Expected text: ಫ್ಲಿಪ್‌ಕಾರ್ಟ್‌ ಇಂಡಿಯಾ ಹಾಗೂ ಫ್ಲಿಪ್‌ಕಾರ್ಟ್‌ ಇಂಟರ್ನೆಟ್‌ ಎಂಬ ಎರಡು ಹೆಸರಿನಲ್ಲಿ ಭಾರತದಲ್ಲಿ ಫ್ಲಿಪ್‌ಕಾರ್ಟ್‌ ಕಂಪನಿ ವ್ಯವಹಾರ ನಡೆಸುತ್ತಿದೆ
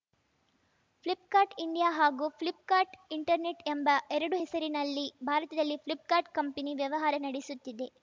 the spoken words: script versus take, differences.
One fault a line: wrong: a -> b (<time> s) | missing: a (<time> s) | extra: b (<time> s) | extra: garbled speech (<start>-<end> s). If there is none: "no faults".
no faults